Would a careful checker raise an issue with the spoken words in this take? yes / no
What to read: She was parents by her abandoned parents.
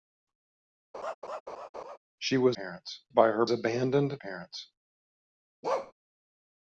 no